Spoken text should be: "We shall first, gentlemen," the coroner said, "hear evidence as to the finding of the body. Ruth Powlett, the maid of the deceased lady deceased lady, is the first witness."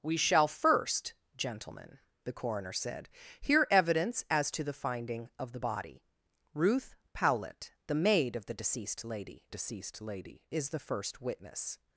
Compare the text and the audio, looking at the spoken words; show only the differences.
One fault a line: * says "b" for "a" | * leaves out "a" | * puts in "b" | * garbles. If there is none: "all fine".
all fine